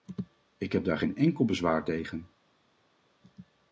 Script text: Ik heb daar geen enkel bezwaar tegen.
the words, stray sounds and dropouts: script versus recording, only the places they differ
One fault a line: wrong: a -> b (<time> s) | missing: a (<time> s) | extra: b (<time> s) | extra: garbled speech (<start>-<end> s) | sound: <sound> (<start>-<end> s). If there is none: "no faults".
no faults